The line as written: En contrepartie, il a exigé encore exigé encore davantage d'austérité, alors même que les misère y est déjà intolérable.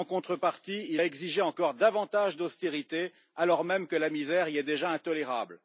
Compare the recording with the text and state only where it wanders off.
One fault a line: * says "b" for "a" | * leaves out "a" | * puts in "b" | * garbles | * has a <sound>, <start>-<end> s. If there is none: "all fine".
* leaves out "exigé encore"
* says "la" for "les"